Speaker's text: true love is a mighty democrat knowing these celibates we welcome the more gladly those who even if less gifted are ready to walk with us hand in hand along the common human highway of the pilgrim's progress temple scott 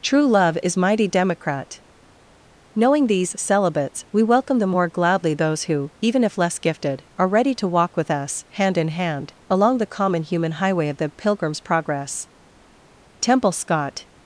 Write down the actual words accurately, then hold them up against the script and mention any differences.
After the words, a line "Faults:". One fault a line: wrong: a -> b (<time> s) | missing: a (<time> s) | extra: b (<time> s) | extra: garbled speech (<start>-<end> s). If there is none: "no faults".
true love is mighty democrat knowing these celibates we welcome the more gladly those who even if less gifted are ready to walk with us hand in hand along the common human highway of the pilgrim's progress temple scott
Faults:
missing: a (0.8 s)